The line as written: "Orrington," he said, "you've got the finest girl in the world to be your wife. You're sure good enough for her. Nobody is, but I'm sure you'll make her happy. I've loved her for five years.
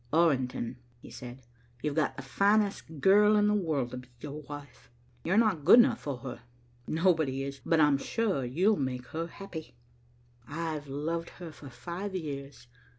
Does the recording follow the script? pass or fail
fail